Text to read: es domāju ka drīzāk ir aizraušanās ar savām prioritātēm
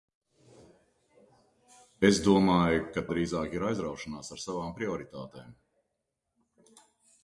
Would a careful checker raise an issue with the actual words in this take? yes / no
no